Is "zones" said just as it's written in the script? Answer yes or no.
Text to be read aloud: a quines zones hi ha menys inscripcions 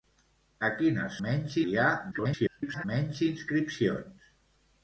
no